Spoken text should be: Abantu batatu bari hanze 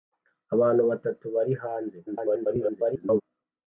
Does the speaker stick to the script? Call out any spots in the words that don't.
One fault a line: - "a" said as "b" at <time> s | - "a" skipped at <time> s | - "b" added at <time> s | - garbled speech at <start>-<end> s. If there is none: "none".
- garbled speech at 2.1-3.2 s